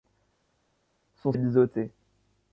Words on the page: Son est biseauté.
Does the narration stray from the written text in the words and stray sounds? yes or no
no